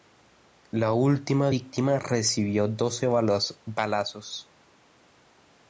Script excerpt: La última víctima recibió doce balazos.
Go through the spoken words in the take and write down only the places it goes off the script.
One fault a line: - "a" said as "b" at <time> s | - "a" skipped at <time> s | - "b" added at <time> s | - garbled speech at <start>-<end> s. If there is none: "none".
none